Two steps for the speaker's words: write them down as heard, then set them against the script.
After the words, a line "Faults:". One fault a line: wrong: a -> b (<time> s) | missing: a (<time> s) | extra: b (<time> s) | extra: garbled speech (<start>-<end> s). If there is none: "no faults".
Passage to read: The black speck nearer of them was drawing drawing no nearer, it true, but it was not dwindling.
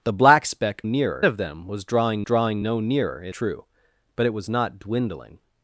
The black speck nearer of them was drawing drawing no nearer, it true, but it was not dwindling.
Faults:
no faults